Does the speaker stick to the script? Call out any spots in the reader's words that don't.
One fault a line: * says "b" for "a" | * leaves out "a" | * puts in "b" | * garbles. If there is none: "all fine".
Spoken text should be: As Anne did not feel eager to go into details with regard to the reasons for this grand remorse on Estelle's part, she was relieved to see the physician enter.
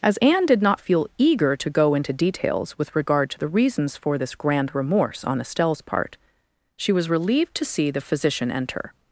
all fine